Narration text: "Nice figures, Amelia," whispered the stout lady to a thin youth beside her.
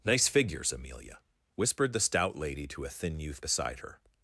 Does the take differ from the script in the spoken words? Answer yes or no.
no